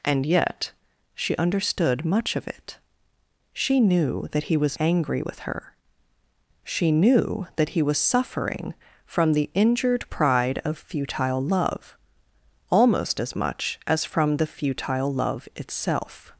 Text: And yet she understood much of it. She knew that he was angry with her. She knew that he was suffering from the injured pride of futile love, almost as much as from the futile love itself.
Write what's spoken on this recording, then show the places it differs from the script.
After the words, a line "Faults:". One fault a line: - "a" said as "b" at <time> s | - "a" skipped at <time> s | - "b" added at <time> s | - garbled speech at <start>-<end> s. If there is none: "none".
And yet she understood much of it. She knew that he was angry with her. She knew that he was suffering from the injured pride of futile love, almost as much as from the futile love itself.
Faults:
none